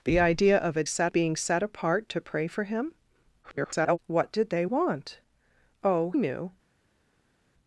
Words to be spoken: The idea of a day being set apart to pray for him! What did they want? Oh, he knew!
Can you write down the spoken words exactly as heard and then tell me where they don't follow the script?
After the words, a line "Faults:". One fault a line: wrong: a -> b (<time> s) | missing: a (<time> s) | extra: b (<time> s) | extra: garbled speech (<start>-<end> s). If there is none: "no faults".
The idea of a set being set apart to pray for him! [garbled] What did they want? Oh, knew!
Faults:
wrong: day -> set (0.9 s)
extra: garbled speech (3.4-4.0 s)
missing: he (6.1 s)